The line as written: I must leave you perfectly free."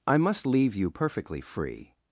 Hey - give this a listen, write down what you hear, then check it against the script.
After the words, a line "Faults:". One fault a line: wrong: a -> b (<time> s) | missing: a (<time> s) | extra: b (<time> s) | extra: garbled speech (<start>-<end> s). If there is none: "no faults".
I must leave you perfectly free."
Faults:
no faults